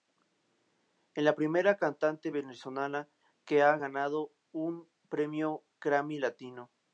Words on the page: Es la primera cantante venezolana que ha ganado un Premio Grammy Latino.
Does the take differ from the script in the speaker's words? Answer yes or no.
no